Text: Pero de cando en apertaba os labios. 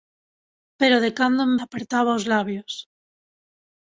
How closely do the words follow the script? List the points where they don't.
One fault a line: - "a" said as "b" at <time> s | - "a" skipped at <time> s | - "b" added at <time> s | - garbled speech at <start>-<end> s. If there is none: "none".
none